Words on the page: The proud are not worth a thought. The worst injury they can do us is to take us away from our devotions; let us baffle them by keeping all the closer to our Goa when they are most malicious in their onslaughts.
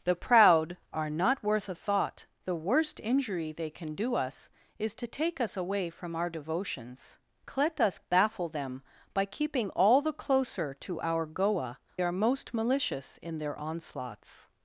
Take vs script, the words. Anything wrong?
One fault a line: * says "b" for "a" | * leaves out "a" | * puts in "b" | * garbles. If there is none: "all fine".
* leaves out "when they"